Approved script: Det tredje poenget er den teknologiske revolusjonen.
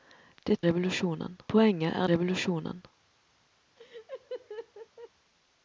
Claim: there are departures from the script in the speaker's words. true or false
true